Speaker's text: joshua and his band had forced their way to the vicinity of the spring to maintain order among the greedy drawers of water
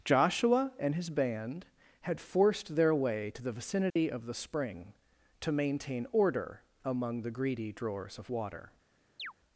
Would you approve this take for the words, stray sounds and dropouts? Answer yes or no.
no